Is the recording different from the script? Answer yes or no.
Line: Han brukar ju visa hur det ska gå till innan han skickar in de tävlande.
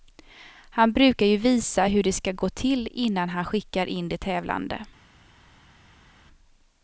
no